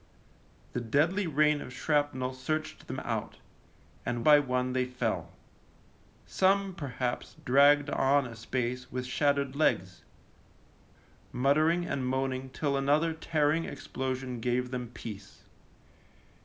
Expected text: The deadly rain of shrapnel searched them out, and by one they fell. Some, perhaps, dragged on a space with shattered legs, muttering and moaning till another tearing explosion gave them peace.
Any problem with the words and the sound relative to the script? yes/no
no